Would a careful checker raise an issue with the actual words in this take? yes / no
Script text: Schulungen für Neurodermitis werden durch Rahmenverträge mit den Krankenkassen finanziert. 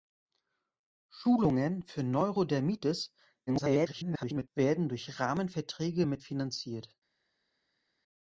yes